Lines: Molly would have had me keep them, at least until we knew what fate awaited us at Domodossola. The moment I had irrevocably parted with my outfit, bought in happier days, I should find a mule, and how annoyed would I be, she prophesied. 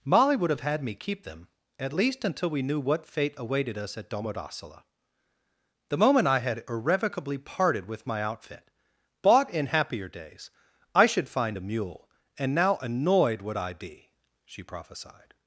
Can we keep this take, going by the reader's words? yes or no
no